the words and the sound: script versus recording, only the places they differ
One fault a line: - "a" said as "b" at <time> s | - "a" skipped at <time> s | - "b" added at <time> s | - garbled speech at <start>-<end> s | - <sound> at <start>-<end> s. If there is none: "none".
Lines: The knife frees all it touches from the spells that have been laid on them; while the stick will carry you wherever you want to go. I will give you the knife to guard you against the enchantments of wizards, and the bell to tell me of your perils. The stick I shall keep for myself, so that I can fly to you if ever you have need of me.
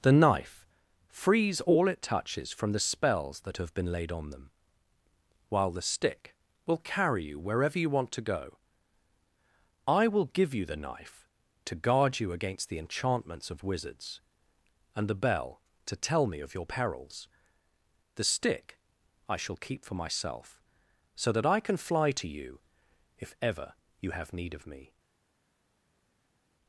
none